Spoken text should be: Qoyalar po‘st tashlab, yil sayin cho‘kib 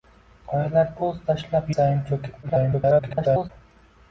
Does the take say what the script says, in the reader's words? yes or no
no